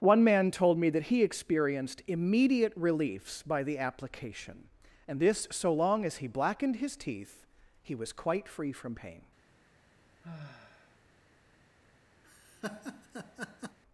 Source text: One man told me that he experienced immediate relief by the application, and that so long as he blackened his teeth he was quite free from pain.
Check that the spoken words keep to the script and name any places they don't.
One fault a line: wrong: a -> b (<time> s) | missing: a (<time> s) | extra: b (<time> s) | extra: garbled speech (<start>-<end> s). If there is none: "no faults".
wrong: relief -> reliefs (2.8 s)
wrong: that -> this (5.2 s)